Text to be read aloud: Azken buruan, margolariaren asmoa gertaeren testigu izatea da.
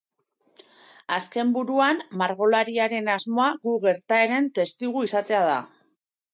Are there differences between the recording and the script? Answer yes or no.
yes